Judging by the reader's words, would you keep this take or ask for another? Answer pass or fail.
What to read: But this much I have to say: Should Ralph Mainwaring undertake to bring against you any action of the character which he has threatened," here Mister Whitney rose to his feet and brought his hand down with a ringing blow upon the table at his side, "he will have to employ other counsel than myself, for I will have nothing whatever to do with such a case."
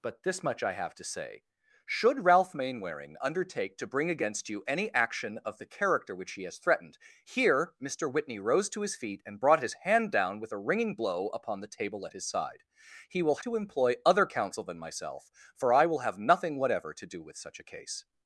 fail